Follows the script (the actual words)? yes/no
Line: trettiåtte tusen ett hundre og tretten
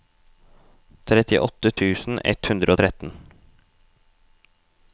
yes